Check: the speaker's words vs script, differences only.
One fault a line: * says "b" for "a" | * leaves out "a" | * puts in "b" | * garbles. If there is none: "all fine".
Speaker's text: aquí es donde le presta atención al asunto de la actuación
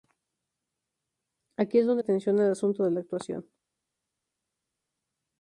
* leaves out "le presta"